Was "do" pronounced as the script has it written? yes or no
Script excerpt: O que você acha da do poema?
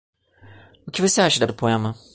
yes